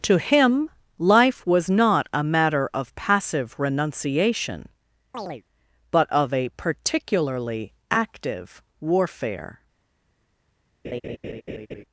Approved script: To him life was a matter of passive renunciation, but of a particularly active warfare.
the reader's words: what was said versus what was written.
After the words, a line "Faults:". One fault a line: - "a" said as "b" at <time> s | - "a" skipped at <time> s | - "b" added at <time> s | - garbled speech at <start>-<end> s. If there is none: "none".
To him life was not a matter of passive renunciation, but of a particularly active warfare.
Faults:
- "not" added at 1.7 s